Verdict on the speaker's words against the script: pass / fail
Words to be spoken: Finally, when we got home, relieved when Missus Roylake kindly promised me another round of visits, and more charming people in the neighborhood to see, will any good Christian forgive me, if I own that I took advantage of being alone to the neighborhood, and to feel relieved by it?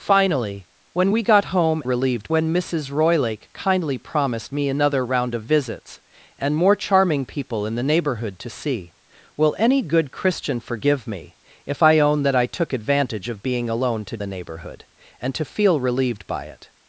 pass